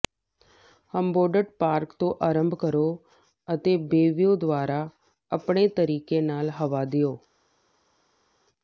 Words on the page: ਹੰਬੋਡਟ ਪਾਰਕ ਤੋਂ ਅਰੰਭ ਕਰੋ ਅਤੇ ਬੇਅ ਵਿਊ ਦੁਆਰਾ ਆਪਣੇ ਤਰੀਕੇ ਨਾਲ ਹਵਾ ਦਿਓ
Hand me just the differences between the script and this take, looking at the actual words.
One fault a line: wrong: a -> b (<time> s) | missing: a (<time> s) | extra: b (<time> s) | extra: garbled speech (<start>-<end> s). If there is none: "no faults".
no faults